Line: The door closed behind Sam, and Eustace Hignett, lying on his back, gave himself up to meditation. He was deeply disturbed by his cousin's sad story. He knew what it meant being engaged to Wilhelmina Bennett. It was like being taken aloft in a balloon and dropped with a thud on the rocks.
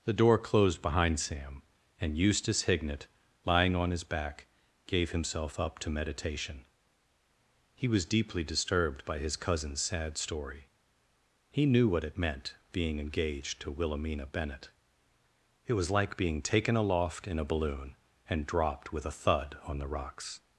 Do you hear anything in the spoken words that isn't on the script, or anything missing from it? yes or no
no